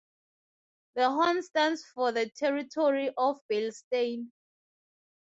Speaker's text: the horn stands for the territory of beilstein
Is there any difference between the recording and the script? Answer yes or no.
no